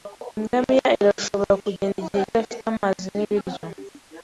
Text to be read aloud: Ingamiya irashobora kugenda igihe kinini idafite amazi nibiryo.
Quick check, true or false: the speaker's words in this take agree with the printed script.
false